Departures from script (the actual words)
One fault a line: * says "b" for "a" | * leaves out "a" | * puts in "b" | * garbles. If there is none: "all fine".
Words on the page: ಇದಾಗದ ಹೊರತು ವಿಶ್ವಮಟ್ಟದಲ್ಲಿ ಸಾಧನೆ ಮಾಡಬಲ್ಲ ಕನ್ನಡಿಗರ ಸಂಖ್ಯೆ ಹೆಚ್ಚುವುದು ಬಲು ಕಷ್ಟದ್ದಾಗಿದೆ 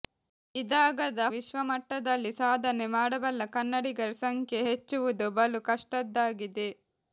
* leaves out "ಹೊರತು"